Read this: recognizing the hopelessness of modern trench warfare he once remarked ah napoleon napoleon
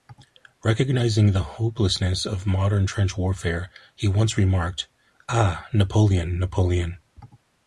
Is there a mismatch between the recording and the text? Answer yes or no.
no